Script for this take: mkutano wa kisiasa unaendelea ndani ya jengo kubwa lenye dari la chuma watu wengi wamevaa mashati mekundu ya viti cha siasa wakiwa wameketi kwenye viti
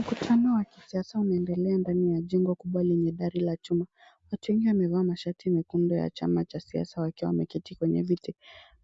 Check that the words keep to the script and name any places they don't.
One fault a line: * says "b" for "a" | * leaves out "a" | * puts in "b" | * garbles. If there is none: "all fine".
* says "chama" for "viti"